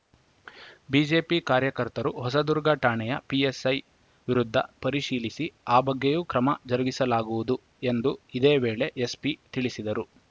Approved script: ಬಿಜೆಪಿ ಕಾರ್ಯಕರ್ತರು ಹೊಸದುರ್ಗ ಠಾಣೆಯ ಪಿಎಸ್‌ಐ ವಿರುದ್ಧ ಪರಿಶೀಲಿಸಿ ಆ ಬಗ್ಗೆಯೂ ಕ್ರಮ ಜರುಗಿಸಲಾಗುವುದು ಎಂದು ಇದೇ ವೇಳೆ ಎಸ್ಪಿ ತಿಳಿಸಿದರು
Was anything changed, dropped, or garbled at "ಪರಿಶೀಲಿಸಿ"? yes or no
no